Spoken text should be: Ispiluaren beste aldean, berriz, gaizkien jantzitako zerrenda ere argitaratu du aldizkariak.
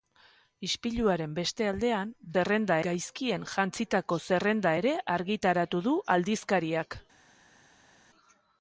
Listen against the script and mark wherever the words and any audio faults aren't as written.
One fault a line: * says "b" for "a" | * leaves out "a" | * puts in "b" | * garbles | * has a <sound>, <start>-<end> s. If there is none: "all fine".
* says "zerrenda" for "berriz"